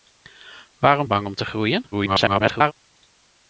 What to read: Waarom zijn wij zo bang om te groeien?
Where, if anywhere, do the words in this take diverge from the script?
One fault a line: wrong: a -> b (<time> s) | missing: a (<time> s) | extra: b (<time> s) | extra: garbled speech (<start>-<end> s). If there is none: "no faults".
missing: zijn wij zo (1.1 s)
extra: garbled speech (1.9-2.7 s)